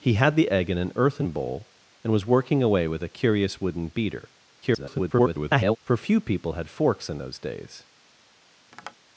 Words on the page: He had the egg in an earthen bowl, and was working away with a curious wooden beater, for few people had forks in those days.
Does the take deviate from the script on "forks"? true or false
false